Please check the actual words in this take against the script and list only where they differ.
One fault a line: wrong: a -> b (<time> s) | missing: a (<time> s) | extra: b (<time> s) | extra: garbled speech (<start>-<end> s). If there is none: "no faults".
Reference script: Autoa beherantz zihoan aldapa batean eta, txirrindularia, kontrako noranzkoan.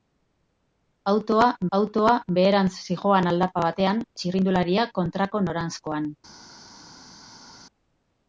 extra: autoa (1.8 s)
missing: eta (4.1 s)